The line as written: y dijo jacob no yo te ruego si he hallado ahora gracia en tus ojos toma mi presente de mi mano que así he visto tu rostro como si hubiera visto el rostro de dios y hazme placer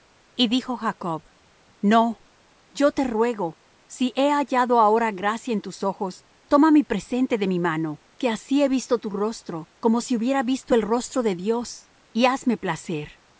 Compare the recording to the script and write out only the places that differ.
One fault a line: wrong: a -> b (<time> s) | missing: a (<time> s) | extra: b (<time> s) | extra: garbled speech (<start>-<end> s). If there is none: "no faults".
no faults